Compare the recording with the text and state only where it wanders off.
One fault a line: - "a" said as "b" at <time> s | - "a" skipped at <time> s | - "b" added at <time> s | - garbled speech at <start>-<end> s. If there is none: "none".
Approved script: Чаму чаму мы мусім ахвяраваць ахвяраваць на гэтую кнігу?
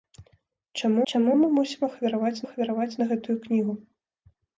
none